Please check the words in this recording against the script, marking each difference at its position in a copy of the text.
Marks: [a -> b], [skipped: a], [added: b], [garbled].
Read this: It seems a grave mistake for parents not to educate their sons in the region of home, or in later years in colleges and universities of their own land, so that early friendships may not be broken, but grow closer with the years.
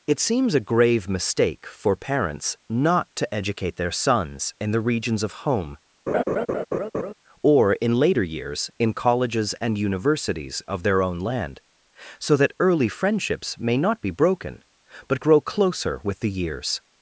It seems a grave mistake for parents not to educate their sons in the [region -> regions] of home, or in later years in colleges and universities of their own land, so that early friendships may not be broken, but grow closer with the years.